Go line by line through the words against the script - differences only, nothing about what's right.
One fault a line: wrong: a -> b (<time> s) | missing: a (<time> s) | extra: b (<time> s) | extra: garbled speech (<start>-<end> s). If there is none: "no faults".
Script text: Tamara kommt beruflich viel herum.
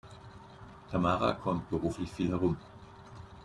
no faults